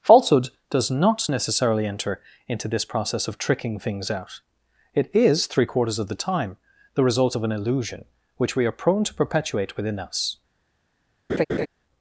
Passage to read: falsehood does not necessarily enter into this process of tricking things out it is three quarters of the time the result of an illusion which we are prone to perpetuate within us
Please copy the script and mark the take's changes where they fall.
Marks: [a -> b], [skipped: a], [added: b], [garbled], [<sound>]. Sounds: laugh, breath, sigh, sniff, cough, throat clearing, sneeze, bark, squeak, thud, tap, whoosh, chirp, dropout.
falsehood does not necessarily enter into this process of tricking things out it is three quarters of the time the result of an illusion which we are prone to perpetuate within us [laugh]